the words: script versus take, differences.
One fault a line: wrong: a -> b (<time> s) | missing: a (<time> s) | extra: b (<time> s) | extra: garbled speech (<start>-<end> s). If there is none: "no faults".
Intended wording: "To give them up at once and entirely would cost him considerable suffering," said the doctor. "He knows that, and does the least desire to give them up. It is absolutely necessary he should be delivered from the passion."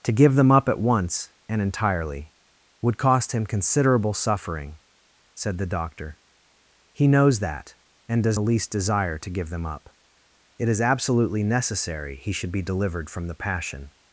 no faults